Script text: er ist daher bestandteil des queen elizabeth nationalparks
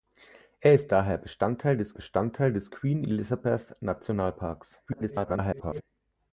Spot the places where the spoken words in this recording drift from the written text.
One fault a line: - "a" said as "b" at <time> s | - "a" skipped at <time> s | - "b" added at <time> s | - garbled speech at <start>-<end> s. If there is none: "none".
- "bestandteil des" added at 1.9 s
- garbled speech at 4.9-5.8 s